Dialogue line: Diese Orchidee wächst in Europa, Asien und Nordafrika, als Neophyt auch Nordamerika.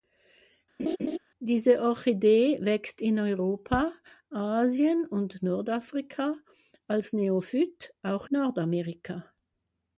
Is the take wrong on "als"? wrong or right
right